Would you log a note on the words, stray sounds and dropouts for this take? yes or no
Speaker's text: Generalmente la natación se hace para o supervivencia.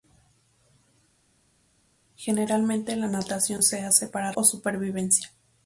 no